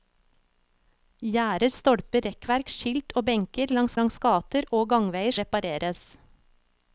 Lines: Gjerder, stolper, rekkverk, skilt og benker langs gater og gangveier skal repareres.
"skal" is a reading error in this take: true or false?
true